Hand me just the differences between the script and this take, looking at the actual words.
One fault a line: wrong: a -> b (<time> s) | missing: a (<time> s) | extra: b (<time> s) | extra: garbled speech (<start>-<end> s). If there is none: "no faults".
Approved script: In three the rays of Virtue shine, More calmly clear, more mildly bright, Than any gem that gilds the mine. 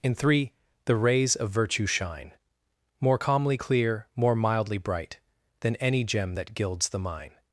no faults